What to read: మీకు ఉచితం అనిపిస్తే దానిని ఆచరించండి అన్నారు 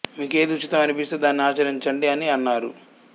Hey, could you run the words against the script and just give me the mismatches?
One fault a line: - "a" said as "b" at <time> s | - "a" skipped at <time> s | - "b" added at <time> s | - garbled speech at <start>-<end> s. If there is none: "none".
- "ఏది" added at 0.4 s
- "అని" added at 2.1 s